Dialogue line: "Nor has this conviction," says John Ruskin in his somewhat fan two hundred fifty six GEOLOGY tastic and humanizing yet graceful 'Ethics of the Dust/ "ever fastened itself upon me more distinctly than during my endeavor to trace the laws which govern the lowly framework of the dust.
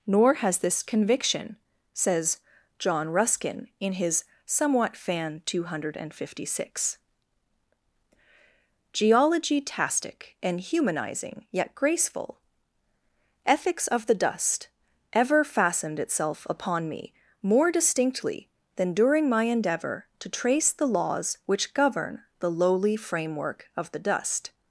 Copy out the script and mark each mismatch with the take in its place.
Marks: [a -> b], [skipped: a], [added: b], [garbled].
"Nor has this conviction," says John Ruskin in his somewhat fan two hundred fifty six GEOLOGY tastic and humanizing yet graceful 'Ethics of the Dust/ "ever fastened itself upon me more distinctly than during my endeavor to trace the laws which govern the lowly framework of the dust.